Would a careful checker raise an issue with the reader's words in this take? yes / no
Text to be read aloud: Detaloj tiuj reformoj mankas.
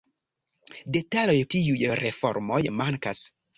no